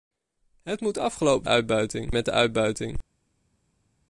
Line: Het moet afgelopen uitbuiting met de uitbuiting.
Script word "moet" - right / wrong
right